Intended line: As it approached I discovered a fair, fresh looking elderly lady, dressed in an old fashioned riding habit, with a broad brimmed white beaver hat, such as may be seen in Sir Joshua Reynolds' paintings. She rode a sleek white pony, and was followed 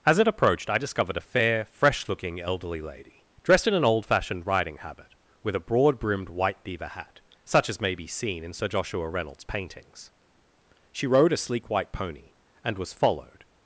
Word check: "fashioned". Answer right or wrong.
right